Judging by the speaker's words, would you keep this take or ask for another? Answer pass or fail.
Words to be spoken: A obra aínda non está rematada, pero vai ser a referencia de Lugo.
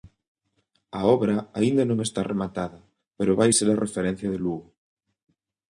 pass